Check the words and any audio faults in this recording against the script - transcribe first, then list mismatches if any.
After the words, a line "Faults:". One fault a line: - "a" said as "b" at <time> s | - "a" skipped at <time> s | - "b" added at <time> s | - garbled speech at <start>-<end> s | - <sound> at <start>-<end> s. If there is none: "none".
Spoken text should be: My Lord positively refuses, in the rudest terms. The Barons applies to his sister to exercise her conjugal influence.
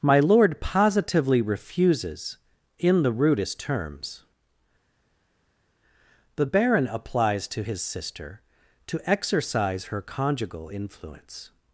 My Lord positively refuses, in the rudest terms. The Baron applies to his sister to exercise her conjugal influence.
Faults:
- "Barons" said as "Baron" at 6.4 s